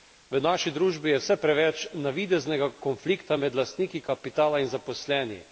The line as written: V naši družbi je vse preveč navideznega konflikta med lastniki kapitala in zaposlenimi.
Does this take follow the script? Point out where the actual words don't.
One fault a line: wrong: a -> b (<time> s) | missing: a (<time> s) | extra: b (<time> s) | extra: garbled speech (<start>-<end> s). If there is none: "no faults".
no faults